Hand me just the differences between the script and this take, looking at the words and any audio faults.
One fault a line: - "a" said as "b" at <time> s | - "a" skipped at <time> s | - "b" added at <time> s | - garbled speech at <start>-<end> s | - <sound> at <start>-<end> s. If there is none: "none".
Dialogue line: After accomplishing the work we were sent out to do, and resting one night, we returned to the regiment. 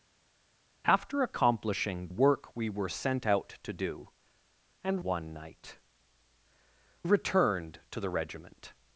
- "the" skipped at 2.1 s
- "resting" skipped at 5.0 s
- "we" skipped at 5.8 s